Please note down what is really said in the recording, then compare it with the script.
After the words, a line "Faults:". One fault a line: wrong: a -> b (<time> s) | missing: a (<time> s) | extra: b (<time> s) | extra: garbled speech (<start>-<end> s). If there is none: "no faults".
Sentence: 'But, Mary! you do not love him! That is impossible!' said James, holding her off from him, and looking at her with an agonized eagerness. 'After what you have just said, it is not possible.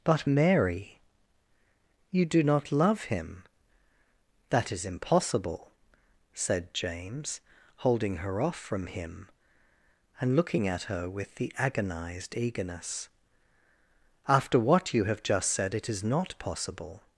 'But, Mary! you do not love him! That is impossible!' said James, holding her off from him, and looking at her with the agonized eagerness. 'After what you have just said, it is not possible.
Faults:
wrong: an -> the (11.3 s)